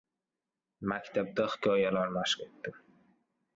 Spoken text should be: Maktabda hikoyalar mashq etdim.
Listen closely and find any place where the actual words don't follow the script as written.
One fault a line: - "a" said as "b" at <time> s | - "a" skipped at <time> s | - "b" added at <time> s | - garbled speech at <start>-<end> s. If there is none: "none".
none